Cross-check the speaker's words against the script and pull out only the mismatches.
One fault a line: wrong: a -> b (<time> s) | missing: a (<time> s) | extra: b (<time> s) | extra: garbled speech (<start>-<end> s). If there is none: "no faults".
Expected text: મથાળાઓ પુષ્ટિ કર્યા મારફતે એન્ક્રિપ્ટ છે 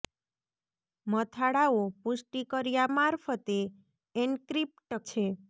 no faults